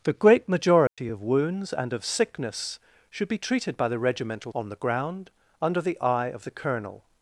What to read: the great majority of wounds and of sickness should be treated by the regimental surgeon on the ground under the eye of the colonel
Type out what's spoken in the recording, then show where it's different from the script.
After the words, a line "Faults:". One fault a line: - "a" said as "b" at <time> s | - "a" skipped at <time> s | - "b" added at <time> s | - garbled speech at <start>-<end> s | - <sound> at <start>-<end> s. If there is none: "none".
the great majority of wounds and of sickness should be treated by the regimental on the ground under the eye of the colonel
Faults:
- dropout at 0.9-1.0 s
- "surgeon" skipped at 4.5 s